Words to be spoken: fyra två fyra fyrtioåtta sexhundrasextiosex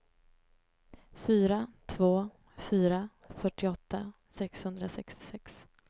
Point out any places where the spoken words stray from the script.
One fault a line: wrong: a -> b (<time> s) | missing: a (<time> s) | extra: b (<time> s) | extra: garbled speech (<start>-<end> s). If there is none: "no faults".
no faults